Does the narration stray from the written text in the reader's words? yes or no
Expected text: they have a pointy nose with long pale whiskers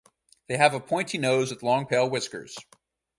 no